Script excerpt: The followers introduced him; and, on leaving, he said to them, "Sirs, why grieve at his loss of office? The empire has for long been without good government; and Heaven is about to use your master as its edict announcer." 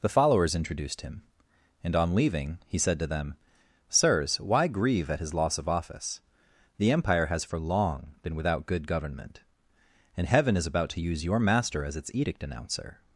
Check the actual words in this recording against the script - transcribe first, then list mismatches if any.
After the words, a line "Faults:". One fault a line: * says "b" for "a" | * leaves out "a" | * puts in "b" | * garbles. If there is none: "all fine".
The followers introduced him; and, on leaving, he said to them, "Sirs, why grieve at his loss of office? The empire has for long been without good government; and Heaven is about to use your master as its edict announcer."
Faults:
all fine